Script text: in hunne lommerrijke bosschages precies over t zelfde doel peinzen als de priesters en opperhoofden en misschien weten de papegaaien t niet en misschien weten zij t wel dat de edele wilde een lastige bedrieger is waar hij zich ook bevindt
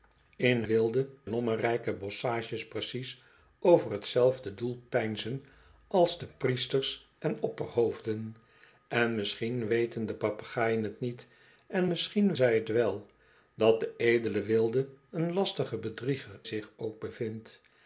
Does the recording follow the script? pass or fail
fail